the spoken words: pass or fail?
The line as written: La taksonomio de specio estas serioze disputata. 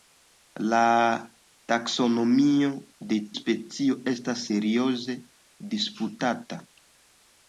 pass